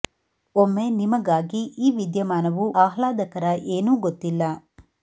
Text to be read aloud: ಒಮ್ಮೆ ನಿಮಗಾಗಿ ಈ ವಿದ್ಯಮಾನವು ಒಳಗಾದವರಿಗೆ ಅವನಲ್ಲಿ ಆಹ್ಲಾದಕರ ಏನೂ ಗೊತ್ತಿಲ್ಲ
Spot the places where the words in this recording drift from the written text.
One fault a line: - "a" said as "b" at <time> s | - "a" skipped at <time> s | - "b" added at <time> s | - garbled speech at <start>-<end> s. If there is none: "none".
- "ಒಳಗಾದವರಿಗೆ ಅವನಲ್ಲಿ" skipped at 2.6 s